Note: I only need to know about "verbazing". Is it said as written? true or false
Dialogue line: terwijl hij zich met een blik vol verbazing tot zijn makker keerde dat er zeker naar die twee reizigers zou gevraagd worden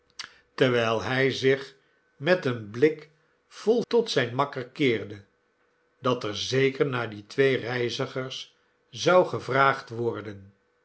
false